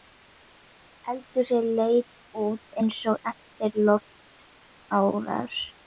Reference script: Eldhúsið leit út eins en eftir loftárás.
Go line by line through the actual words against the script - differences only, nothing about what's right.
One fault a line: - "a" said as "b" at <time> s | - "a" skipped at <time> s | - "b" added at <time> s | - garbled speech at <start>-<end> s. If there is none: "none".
- "en" said as "og" at 3.2 s